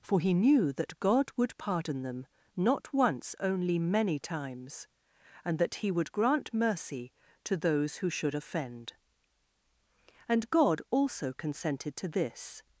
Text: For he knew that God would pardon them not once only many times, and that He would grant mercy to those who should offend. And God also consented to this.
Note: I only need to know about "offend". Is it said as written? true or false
true